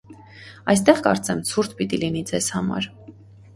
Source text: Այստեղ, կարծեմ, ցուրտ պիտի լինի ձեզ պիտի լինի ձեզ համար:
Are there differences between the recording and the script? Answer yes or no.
yes